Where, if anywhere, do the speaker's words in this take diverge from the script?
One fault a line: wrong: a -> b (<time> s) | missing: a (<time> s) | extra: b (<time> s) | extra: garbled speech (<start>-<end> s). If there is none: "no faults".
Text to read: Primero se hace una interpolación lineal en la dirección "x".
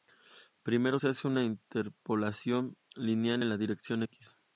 no faults